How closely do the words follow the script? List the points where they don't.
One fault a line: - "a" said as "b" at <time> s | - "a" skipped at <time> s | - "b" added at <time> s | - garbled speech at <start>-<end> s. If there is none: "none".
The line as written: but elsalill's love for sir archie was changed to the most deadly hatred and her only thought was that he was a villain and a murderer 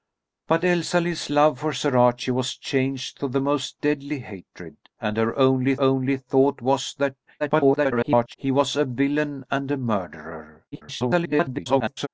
- "only" added at 5.8 s
- garbled speech at 7.4-8.4 s
- garbled speech at 10.7-12.1 s